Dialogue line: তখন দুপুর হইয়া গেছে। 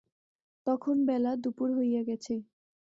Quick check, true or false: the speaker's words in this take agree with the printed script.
false